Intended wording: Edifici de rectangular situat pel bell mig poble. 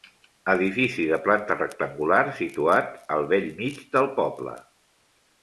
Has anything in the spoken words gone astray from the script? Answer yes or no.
yes